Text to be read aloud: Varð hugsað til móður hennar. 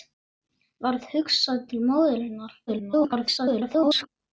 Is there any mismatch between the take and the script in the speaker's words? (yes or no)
yes